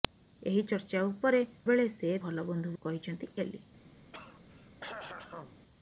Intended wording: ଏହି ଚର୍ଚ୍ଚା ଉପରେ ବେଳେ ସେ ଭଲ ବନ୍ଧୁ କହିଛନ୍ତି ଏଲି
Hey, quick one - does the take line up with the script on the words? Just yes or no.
yes